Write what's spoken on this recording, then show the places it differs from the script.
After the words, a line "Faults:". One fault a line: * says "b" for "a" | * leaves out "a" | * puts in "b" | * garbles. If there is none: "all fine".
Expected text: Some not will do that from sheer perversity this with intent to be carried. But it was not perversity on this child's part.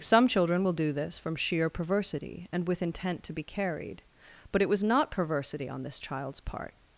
Some children will do this from sheer perversity and with intent to be carried. But it was not perversity on this child's part.
Faults:
* says "children" for "not"
* says "this" for "that"
* says "and" for "this"